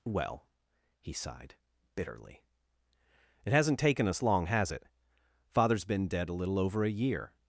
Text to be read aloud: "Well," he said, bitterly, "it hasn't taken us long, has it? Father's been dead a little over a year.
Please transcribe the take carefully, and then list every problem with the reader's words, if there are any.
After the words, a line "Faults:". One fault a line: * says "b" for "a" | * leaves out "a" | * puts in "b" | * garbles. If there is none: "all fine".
"Well," he sighed, bitterly, "it hasn't taken us long, has it? Father's been dead a little over a year.
Faults:
* says "sighed" for "said"